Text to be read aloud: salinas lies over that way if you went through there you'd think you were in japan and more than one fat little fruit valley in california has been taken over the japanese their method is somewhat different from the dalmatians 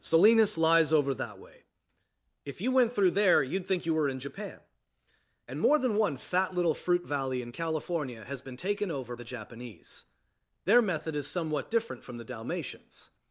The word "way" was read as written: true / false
true